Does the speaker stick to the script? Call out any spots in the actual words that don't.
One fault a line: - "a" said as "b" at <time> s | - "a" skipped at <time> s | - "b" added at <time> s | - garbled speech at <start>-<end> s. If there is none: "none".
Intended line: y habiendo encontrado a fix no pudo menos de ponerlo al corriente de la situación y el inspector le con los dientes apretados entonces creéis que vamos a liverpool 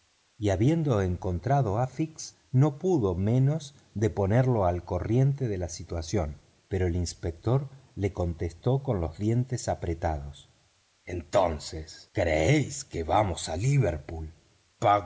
- "y" said as "pero" at 6.7 s
- "contestó" added at 8.1 s